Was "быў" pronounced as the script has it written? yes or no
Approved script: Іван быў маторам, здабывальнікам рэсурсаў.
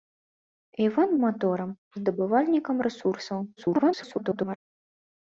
no